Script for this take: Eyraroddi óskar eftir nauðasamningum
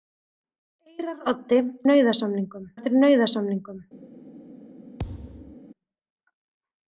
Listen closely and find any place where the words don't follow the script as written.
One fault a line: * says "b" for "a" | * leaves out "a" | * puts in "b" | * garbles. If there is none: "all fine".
* says "nauðasamningum" for "óskar"